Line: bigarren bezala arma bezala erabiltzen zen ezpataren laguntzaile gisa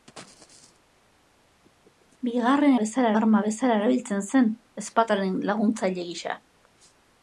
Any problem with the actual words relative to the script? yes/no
no